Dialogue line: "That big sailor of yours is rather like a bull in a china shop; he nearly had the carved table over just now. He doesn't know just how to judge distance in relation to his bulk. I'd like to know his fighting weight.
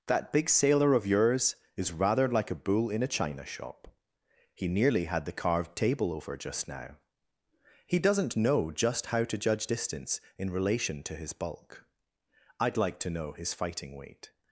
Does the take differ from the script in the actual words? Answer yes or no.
no